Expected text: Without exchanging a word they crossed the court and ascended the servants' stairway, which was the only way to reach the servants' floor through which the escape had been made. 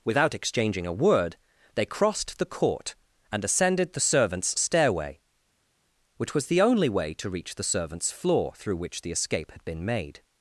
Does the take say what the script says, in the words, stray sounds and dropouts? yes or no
yes